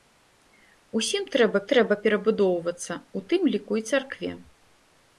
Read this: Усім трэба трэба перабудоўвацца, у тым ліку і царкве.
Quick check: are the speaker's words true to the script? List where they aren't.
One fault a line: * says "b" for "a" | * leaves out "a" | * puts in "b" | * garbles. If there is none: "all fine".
all fine